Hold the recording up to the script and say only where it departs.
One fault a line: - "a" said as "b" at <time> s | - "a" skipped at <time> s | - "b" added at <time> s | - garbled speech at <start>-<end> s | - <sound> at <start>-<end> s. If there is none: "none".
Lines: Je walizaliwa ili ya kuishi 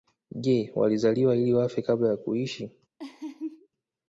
- "wafe kabla" added at 1.5 s
- laugh at 3.0-3.7 s